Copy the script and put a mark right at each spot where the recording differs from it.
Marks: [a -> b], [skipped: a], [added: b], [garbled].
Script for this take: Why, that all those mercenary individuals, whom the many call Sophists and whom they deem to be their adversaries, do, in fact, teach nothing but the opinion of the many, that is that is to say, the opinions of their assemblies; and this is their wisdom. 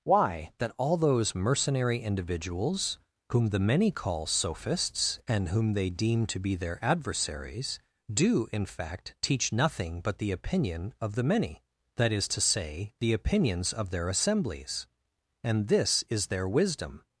Why, that all those mercenary individuals, whom the many call Sophists and whom they deem to be their adversaries, do, in fact, teach nothing but the opinion of the many, that is [skipped: that is] to say, the opinions of their assemblies; and this is their wisdom.